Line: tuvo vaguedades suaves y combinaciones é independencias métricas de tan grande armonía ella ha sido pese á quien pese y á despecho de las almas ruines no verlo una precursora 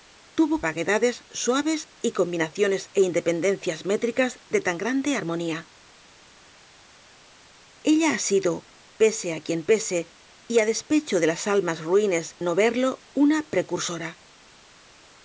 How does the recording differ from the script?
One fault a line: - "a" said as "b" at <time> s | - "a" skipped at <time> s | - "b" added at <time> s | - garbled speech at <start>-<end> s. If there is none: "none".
none